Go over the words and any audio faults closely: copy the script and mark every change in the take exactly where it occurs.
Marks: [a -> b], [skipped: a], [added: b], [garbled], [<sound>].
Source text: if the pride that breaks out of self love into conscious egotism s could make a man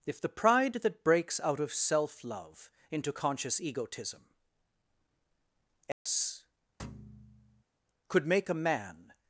if the pride that breaks out of self love into conscious egotism s [dropout] [thud] could make a man